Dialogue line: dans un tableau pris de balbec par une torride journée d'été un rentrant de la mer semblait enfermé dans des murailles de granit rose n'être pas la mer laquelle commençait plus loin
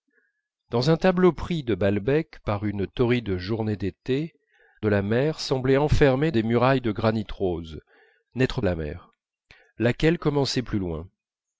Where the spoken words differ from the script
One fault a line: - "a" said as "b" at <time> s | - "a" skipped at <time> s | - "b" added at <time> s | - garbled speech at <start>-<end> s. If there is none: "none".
- "un rentrant" skipped at 4.3 s
- "dans" skipped at 6.3 s
- "pas" skipped at 8.6 s